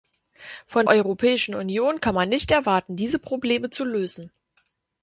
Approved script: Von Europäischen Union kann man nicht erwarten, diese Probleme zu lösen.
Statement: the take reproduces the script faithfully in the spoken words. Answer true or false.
true